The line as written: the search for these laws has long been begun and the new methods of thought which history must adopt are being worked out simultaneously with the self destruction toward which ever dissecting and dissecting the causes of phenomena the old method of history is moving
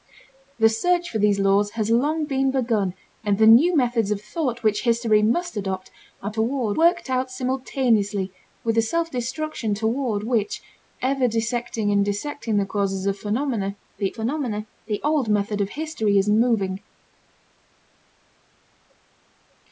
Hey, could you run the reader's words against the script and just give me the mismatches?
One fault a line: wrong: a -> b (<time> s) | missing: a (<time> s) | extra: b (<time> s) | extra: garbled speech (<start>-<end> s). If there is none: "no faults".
wrong: being -> toward (6.3 s)
extra: phenomena the (14.1 s)